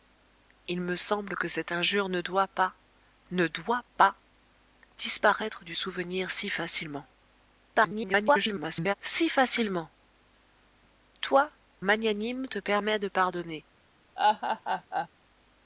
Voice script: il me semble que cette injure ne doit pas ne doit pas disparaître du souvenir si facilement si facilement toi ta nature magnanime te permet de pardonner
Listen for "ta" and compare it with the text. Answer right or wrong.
wrong